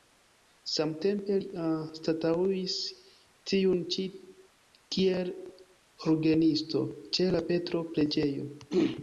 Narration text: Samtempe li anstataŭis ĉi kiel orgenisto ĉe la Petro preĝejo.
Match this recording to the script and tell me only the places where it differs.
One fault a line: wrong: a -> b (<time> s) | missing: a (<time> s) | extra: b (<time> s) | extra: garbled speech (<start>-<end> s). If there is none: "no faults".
extra: tiun (3.5 s)